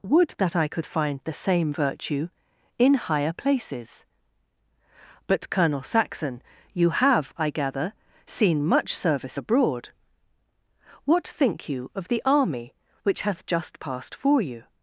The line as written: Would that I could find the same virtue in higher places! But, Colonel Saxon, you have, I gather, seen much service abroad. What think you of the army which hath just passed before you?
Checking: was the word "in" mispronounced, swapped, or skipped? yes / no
no